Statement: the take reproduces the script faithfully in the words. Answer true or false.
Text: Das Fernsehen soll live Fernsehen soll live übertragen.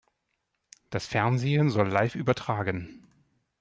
false